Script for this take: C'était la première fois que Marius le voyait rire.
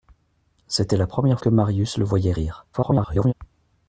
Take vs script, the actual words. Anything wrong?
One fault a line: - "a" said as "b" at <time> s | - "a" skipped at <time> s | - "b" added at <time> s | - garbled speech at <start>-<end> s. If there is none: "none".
- "fois" skipped at 1.4 s
- garbled speech at 2.7-3.3 s